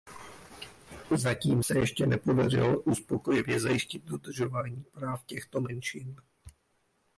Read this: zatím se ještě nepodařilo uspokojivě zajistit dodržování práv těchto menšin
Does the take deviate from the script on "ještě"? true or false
false